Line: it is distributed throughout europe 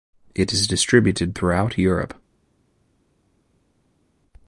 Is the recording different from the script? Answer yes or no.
no